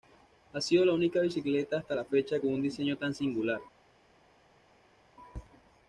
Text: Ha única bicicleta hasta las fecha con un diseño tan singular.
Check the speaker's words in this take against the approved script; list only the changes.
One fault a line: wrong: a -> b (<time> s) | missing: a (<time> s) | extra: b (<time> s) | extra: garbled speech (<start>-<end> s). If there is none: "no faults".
extra: sido la (0.6 s)
wrong: las -> la (1.9 s)